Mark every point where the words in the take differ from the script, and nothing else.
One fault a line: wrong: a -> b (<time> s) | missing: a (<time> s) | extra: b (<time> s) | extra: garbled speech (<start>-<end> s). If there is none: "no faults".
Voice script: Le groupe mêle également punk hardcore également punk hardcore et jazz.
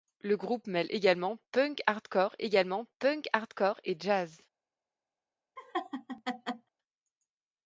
no faults